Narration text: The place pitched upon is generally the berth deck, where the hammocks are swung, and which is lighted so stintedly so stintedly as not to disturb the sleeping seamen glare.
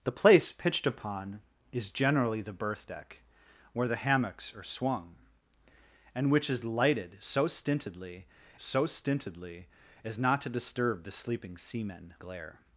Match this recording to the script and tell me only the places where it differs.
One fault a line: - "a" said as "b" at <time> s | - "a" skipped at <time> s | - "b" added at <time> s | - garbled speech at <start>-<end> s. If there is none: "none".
none